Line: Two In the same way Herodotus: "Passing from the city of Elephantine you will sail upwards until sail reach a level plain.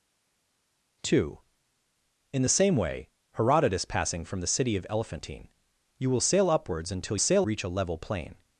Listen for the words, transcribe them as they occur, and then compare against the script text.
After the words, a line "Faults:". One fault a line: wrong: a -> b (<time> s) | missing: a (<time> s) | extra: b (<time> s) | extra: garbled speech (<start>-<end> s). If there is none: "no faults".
Two In the same way Herodotus: "Passing from the city of Elephantine you will sail upwards until sail reach a level plain.
Faults:
no faults